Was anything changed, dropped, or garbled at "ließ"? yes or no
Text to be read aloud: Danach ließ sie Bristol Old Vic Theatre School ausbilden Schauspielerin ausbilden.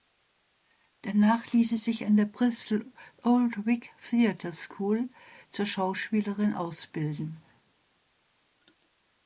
no